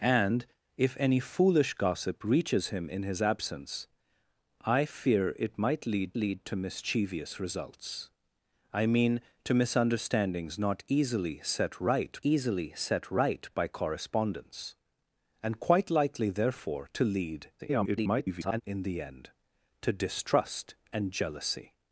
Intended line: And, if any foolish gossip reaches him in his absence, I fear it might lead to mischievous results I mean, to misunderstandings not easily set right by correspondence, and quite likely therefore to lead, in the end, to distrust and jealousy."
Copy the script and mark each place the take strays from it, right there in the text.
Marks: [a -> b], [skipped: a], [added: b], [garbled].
And, if any foolish gossip reaches him in his absence, I fear it might lead [added: lead] to mischievous results I mean, to misunderstandings not easily set right [added: easily set right] by correspondence, and quite likely therefore to lead, [garbled] in the end, to distrust and jealousy."